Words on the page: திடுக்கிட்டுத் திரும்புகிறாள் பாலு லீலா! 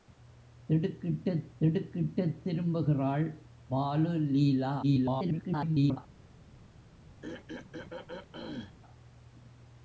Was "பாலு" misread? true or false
false